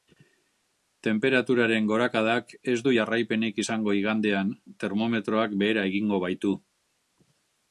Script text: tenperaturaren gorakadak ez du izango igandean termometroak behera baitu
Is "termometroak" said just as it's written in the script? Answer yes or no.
yes